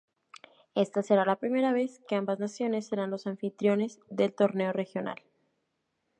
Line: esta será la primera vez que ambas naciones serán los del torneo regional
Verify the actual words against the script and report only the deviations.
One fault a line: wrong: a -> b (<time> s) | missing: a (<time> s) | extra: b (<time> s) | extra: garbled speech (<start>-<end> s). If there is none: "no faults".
extra: anfitriones (3.3 s)